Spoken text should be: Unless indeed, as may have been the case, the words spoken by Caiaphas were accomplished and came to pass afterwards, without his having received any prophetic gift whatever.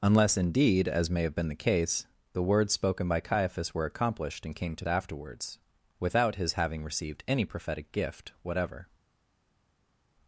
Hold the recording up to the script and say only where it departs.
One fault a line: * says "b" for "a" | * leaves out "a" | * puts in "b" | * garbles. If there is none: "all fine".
* leaves out "pass"